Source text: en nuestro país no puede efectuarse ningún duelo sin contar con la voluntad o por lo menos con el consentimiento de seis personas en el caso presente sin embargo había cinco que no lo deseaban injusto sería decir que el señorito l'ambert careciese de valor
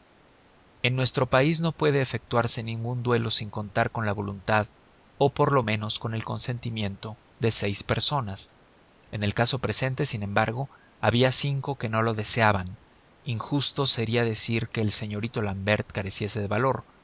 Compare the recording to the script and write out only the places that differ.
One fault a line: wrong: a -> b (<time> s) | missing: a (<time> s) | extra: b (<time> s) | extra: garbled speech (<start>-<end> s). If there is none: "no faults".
no faults